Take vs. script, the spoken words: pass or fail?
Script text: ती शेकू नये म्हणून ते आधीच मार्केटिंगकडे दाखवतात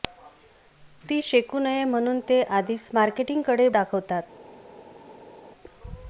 pass